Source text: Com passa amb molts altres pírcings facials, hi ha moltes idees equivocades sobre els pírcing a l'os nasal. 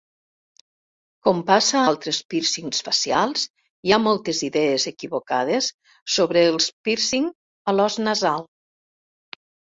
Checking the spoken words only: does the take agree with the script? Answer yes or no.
no